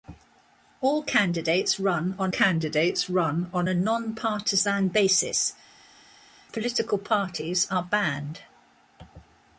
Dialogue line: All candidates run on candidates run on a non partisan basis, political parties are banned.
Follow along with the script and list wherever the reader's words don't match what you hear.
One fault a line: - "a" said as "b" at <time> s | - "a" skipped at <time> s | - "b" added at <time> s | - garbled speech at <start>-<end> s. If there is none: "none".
none